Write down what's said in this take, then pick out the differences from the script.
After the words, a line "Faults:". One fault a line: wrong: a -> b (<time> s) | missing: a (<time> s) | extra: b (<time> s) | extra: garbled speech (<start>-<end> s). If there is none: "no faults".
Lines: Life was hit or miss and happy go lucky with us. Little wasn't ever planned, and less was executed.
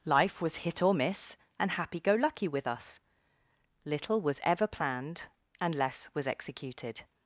Life was hit or miss and happy go lucky with us. Little was ever planned, and less was executed.
Faults:
wrong: wasn't -> was (4.2 s)